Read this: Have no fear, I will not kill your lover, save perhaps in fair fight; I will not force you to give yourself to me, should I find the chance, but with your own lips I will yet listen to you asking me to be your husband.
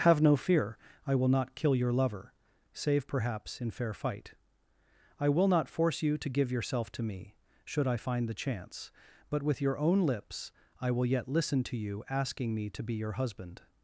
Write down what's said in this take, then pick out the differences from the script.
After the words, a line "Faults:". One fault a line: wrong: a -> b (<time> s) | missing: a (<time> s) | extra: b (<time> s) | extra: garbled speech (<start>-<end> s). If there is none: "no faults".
Have no fear, I will not kill your lover, save perhaps in fair fight; I will not force you to give yourself to me, should I find the chance, but with your own lips I will yet listen to you asking me to be your husband.
Faults:
no faults